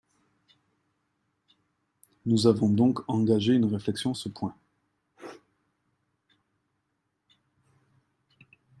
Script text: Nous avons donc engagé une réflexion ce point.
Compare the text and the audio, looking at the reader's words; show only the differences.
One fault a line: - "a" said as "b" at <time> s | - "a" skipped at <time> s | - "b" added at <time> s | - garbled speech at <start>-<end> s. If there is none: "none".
none